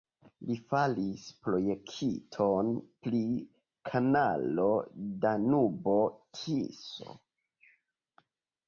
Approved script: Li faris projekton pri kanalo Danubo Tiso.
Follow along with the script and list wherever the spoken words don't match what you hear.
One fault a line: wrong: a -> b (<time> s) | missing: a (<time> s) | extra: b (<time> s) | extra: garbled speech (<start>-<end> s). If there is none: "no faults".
no faults